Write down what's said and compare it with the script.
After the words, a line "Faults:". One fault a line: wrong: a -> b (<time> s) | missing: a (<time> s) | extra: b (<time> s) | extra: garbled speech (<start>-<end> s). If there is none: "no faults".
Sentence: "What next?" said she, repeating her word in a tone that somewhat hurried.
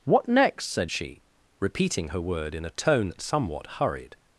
"What next?" said she, repeating her word in a tone that somewhat hurried.
Faults:
no faults